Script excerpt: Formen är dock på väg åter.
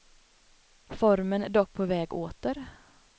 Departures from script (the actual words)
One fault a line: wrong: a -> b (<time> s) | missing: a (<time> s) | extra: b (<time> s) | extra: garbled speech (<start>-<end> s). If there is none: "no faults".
no faults